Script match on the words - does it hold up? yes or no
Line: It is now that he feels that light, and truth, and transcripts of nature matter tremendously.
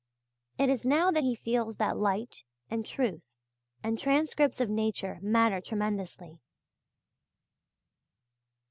yes